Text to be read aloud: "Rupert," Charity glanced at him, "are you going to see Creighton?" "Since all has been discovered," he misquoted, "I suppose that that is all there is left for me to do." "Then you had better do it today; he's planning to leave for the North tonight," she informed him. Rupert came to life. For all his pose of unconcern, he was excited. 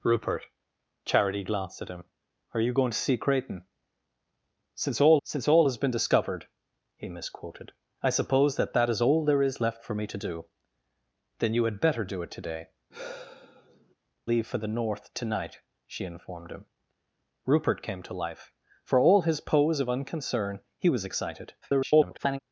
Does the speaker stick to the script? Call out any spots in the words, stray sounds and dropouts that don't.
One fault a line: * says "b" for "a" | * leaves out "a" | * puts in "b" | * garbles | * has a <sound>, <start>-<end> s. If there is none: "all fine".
* puts in "since all"
* leaves out "he's planning to"
* has a sigh, 12.9-14.0 s
* garbles